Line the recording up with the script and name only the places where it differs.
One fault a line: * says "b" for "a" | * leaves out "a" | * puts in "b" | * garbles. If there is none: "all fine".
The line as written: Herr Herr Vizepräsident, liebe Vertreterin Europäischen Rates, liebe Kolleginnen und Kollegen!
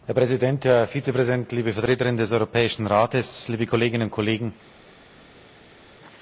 * puts in "Präsident"
* puts in "des"